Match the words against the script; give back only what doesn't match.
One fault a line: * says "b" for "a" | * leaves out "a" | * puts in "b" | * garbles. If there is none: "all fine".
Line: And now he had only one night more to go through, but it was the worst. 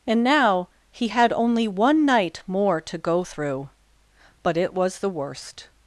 all fine